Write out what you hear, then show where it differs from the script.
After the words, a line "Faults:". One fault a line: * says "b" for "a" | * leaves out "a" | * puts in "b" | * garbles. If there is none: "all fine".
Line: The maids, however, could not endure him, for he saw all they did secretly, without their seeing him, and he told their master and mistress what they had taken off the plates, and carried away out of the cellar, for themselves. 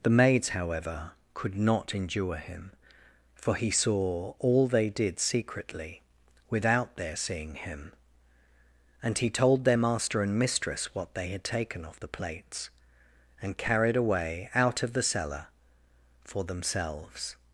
The maids, however, could not endure him, for he saw all they did secretly, without their seeing him, and he told their master and mistress what they had taken off the plates, and carried away out of the cellar, for themselves.
Faults:
all fine